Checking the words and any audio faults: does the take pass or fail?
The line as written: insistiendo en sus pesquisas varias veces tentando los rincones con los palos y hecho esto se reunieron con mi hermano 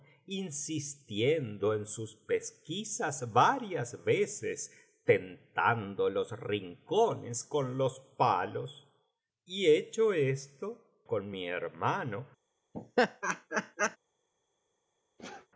fail